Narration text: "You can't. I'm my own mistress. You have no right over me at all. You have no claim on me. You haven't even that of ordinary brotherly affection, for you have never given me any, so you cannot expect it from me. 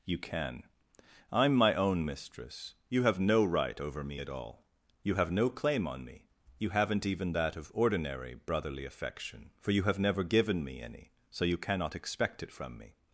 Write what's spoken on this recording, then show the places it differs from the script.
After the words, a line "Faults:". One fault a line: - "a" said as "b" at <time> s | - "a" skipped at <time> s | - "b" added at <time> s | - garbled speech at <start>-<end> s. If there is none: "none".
"You can. I'm my own mistress. You have no right over me at all. You have no claim on me. You haven't even that of ordinary brotherly affection, for you have never given me any, so you cannot expect it from me.
Faults:
- "can't" said as "can" at 0.2 s